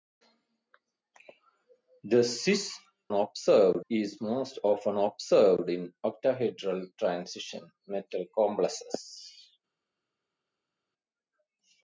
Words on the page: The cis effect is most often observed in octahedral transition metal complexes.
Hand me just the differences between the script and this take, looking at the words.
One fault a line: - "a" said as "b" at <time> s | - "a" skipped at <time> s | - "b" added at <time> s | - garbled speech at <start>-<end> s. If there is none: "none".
- "effect" said as "observed" at 3.1 s